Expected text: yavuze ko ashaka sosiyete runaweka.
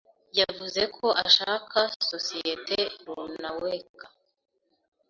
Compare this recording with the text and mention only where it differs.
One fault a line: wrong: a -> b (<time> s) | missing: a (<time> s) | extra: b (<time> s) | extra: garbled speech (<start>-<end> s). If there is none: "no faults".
no faults